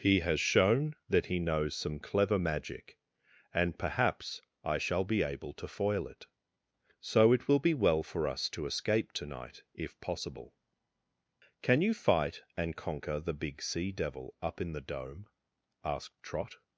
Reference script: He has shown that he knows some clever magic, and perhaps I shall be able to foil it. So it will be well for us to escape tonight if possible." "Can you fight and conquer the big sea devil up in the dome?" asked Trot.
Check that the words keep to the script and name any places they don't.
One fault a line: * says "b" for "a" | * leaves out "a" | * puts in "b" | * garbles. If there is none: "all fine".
all fine